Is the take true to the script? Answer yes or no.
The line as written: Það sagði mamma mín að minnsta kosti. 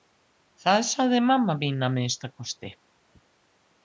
yes